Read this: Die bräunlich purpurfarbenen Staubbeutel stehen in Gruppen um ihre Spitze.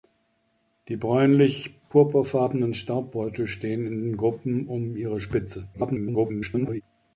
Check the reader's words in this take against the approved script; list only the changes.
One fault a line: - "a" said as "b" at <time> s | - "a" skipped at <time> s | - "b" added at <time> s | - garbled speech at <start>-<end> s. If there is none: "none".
- garbled speech at 5.7-6.8 s